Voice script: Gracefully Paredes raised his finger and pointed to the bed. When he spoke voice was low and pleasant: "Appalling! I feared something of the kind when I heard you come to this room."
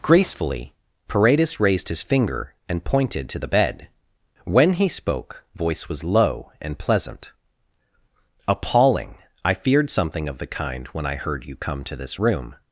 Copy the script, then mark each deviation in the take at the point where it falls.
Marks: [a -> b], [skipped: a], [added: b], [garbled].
Gracefully Paredes raised his finger and pointed to the bed. When he spoke voice was low and pleasant: "Appalling! I feared something of the kind when I heard you come to this room."